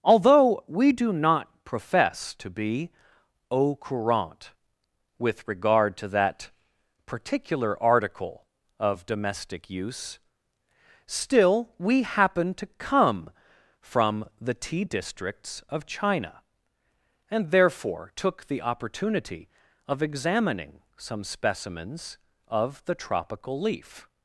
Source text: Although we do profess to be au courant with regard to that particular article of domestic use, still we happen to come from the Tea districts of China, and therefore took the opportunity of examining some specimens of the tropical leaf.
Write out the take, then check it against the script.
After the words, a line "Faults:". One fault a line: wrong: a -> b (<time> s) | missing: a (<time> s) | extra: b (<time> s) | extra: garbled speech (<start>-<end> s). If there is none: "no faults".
Although we do not profess to be au courant with regard to that particular article of domestic use, still we happen to come from the Tea districts of China, and therefore took the opportunity of examining some specimens of the tropical leaf.
Faults:
extra: not (1.1 s)